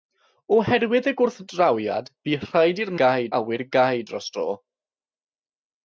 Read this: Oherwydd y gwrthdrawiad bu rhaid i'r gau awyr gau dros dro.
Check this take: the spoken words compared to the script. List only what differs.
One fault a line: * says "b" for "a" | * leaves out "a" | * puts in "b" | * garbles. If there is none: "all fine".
all fine